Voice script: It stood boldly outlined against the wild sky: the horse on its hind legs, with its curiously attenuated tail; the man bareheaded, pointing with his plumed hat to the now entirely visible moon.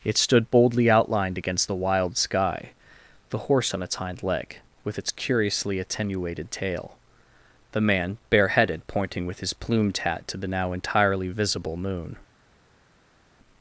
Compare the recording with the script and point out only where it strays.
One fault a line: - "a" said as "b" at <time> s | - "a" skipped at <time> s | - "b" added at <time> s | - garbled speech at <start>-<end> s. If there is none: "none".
- "legs" said as "leg" at 4.2 s